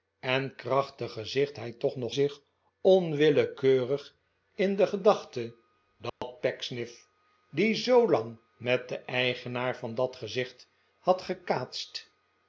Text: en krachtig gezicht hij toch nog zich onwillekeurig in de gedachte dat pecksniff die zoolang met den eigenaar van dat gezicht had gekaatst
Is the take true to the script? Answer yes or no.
yes